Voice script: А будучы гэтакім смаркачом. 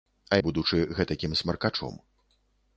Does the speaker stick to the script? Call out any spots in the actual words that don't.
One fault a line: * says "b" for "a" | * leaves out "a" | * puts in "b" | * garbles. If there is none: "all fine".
all fine